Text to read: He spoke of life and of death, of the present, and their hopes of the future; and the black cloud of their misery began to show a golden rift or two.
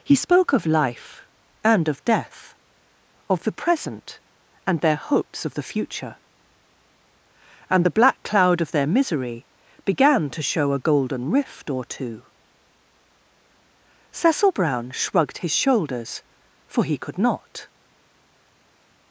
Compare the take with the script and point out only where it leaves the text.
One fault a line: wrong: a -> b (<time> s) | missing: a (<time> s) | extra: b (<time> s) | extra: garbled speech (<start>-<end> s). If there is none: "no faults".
extra: Cecil Brown shrugged his shoulders for he could not (14.1 s)